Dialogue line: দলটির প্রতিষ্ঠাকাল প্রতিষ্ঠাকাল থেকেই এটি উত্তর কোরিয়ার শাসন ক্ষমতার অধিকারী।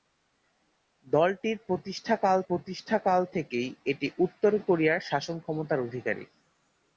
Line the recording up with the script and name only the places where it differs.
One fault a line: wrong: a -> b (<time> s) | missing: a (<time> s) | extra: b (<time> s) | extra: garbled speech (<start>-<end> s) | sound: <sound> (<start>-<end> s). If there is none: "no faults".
no faults